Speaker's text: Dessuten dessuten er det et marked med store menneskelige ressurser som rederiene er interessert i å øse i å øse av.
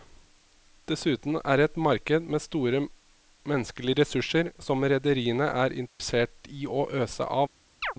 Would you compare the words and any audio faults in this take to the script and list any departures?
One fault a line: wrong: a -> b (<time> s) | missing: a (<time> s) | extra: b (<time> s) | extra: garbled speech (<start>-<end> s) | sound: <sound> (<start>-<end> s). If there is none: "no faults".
missing: dessuten (1.4 s)
sound: dropout (5.9-6.0 s)
missing: i å øse (7.2 s)
sound: chirp (7.8-7.9 s)